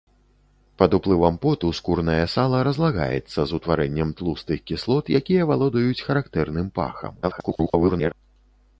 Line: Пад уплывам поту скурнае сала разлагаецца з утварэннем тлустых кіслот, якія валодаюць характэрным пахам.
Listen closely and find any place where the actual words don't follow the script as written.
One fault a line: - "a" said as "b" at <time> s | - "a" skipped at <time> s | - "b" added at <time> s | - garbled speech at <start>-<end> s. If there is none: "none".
- garbled speech at 7.2-8.1 s